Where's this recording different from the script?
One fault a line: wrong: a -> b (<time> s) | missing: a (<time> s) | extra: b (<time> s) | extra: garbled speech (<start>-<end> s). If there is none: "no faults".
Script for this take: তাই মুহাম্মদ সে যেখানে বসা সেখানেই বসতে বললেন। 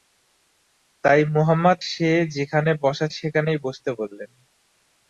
no faults